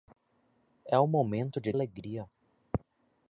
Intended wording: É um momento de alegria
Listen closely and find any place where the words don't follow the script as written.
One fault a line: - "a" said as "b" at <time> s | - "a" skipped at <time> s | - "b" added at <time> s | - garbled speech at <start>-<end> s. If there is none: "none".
none